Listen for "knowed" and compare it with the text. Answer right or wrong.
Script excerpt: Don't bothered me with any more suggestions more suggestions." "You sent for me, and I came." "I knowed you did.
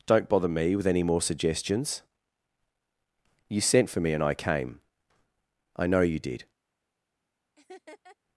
wrong